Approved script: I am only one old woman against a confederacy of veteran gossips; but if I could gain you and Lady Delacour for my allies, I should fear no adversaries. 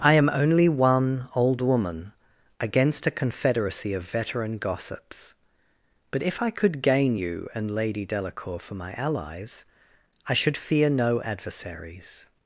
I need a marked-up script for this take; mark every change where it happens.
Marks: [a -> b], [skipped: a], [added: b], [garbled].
I am only one old woman against a confederacy of veteran gossips; but if I could gain you and Lady Delacour for my allies, I should fear no adversaries.